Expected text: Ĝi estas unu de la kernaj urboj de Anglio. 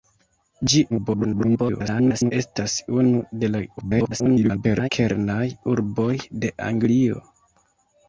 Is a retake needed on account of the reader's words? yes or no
yes